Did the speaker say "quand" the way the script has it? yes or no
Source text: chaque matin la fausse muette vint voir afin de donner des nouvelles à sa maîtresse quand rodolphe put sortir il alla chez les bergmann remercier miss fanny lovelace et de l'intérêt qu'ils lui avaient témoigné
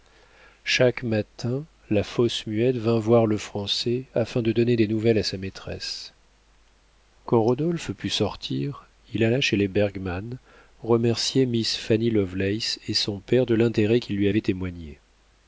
yes